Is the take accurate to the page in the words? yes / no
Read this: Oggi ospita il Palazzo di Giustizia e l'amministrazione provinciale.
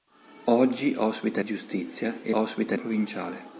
no